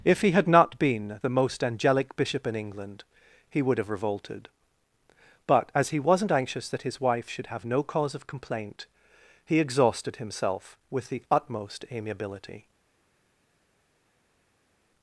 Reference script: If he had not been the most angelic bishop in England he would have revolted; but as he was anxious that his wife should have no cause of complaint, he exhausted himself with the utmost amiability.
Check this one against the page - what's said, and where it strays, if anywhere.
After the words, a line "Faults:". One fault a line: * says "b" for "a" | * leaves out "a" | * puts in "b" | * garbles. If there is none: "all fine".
If he had not been the most angelic bishop in England he would have revolted; but as he wasn't anxious that his wife should have no cause of complaint, he exhausted himself with the utmost amiability.
Faults:
* says "wasn't" for "was"